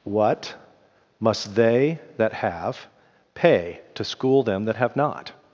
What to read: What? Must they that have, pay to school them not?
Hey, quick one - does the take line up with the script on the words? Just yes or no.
no